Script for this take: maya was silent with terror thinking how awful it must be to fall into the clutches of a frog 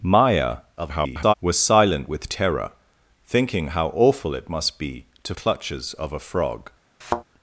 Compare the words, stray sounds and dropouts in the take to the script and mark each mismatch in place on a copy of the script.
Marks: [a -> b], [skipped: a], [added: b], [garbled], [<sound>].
maya [garbled] was silent with terror thinking how awful it must be to [skipped: fall into the] clutches of a frog [thud]